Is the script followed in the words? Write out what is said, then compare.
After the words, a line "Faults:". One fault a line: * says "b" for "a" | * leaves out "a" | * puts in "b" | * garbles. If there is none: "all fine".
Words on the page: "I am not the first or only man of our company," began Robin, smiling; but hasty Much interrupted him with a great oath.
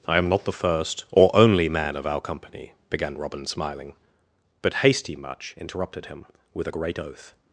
"I am not the first or only man of our company," began Robin, smiling; but hasty Much interrupted him with a great oath.
Faults:
all fine